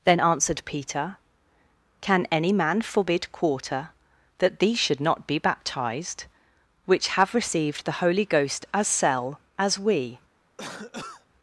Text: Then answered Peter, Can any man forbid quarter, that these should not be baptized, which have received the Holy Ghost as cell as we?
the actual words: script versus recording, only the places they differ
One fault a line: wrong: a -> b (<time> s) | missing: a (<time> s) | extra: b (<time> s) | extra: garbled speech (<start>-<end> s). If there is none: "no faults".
no faults